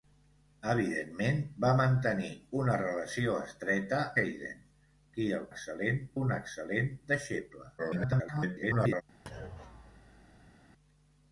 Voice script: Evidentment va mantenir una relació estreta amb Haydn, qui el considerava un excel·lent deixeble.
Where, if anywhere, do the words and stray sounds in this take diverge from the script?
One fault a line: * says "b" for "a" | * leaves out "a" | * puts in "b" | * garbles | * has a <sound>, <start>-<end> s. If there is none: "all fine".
* leaves out "amb"
* says "excel·lent" for "considerava"
* garbles
* has a thud, 9.3-10.6 s